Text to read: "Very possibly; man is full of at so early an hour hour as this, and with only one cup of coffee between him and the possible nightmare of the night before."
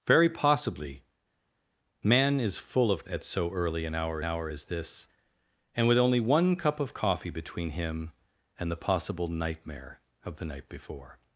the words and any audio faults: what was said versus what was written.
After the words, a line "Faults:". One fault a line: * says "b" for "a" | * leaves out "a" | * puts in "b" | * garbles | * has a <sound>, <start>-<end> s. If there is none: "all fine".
"Very possibly; man is full of at so early an hour hour as this, and with only one cup of coffee between him and the possible nightmare of the night before."
Faults:
all fine